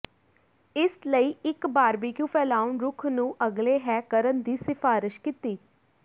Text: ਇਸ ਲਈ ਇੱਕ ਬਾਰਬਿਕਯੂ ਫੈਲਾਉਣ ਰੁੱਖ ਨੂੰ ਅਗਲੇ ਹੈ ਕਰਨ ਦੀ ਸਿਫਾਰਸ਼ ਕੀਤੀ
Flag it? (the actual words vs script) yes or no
no